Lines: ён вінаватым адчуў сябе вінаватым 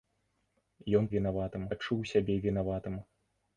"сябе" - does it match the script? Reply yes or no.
yes